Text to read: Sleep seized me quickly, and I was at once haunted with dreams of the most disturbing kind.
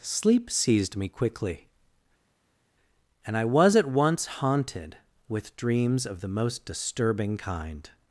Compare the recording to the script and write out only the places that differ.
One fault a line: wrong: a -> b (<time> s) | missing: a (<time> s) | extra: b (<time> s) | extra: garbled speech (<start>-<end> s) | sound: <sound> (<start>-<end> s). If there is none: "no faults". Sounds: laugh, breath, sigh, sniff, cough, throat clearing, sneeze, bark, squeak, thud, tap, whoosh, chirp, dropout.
no faults